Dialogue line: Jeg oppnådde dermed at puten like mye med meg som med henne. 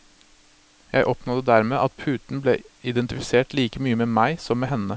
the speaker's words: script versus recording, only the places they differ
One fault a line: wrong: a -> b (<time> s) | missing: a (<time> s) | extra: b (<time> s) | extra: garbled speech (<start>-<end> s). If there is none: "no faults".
extra: ble identifisert (2.4 s)